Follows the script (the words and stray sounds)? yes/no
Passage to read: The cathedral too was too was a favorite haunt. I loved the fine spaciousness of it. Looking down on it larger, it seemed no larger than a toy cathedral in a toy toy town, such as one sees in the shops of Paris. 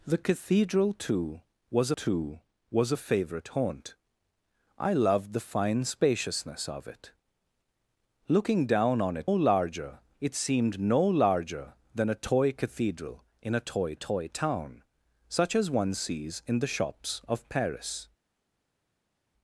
yes